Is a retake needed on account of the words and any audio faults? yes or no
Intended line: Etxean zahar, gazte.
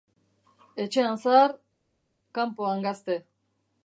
yes